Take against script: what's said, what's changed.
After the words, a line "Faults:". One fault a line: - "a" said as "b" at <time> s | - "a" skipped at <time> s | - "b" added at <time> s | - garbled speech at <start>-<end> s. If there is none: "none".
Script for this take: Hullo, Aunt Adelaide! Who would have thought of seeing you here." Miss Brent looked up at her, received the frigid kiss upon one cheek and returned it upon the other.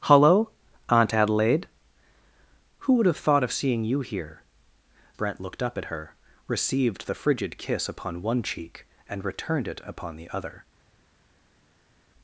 Hullo, Aunt Adelaide! Who would have thought of seeing you here." Brent looked up at her, received the frigid kiss upon one cheek and returned it upon the other.
Faults:
- "Miss" skipped at 4.4 s